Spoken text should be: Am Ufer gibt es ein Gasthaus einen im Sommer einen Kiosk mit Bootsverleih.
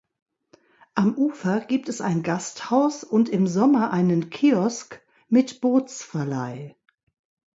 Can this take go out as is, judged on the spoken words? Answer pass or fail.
fail